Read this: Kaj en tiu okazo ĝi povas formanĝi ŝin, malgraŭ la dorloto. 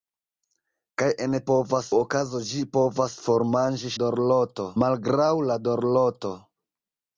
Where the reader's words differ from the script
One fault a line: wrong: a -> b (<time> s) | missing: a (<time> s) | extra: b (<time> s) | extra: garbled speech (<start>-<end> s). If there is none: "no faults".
wrong: tiu -> povas (1.5 s)
wrong: ŝin -> dorloto (4.0 s)